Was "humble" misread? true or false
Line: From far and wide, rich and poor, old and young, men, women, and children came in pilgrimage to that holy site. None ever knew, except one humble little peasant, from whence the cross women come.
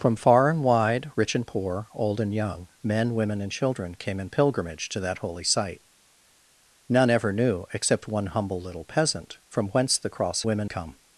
false